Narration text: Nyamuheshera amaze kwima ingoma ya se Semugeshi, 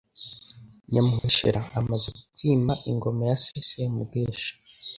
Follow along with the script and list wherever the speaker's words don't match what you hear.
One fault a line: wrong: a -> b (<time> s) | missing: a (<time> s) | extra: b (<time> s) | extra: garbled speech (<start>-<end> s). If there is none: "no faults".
no faults